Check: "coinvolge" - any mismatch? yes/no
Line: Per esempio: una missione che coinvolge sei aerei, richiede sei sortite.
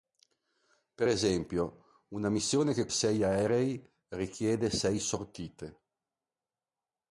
yes